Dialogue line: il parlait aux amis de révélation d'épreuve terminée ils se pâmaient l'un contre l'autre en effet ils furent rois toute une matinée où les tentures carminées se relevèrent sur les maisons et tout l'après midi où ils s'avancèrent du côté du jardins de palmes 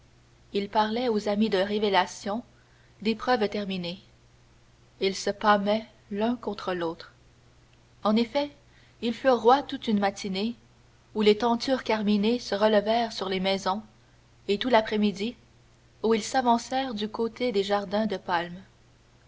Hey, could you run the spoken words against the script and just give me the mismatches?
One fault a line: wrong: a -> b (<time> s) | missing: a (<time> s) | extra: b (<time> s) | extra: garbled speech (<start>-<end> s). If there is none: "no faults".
wrong: du -> des (17.5 s)